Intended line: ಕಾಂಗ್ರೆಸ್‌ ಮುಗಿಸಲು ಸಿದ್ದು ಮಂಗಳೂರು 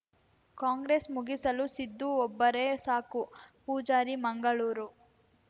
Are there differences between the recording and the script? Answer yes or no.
yes